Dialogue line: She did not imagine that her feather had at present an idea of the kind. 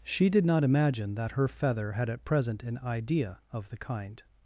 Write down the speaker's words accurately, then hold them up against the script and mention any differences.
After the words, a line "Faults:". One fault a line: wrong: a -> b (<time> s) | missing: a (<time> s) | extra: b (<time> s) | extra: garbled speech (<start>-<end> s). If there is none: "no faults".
She did not imagine that her feather had at present an idea of the kind.
Faults:
no faults